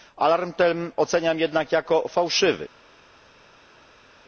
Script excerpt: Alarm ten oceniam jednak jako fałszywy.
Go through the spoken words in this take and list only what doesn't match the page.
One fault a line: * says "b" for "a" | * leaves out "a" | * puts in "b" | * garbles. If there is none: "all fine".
all fine